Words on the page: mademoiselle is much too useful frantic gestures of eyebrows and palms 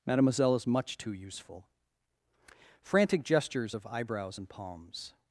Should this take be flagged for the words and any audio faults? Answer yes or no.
no